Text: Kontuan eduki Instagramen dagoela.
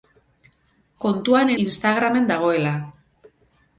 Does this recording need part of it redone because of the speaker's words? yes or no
yes